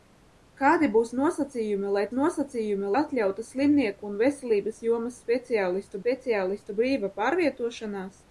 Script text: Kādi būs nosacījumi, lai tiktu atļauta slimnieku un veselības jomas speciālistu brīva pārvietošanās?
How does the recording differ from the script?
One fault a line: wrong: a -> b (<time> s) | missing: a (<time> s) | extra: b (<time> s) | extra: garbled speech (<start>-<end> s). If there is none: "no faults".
wrong: tiktu -> nosacījumi (2.2 s)
extra: speciālistu (6.0 s)